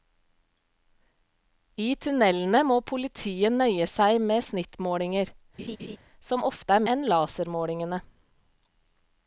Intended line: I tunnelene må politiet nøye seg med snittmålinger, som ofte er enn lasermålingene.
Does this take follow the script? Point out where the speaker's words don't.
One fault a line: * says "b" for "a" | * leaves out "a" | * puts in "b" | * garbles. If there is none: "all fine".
all fine